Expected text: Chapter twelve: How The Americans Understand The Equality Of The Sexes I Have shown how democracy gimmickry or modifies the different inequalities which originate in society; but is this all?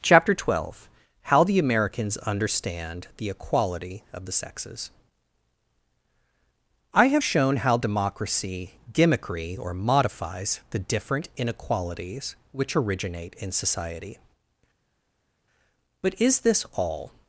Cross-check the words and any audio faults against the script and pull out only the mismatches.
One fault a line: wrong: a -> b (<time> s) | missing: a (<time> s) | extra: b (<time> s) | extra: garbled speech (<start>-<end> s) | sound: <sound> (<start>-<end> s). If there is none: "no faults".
no faults